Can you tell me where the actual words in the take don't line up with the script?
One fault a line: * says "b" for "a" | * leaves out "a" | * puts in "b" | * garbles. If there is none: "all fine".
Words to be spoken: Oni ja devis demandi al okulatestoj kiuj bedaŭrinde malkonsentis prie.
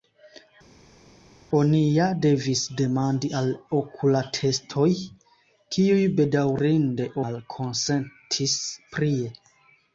all fine